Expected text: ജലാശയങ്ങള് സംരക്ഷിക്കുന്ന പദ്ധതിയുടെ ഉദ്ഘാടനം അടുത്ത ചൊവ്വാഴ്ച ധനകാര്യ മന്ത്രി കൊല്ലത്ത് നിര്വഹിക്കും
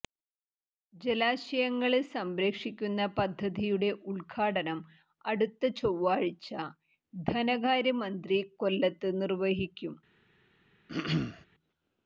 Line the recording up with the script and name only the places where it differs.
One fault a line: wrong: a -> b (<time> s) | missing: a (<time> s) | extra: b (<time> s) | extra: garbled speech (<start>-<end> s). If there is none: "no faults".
no faults